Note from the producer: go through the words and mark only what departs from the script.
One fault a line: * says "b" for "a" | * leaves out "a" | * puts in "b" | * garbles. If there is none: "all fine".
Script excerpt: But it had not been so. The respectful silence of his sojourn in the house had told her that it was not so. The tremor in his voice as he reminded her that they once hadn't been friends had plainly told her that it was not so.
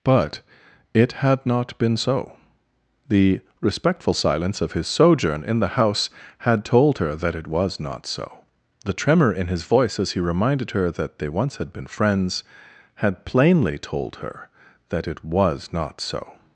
* says "had" for "hadn't"